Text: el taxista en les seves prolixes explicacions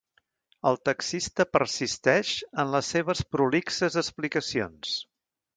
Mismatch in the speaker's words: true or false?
true